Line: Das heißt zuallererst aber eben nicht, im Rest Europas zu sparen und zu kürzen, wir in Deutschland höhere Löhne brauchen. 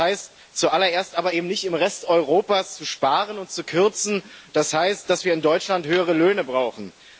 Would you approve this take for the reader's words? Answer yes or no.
no